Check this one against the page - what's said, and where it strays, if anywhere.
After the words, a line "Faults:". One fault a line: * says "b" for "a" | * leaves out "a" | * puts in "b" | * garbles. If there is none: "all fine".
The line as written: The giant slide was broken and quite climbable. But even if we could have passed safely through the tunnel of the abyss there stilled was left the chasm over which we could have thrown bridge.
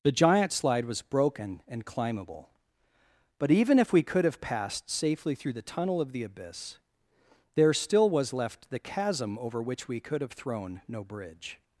The giant slide was broken and climbable. But even if we could have passed safely through the tunnel of the abyss there still was left the chasm over which we could have thrown no bridge.
Faults:
* leaves out "quite"
* says "still" for "stilled"
* puts in "no"